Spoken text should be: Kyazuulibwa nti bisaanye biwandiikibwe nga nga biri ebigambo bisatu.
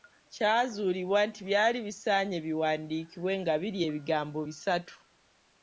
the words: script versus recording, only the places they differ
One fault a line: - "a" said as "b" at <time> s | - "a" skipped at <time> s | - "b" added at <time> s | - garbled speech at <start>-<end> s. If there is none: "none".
- "byali" added at 1.5 s
- "nga" skipped at 3.5 s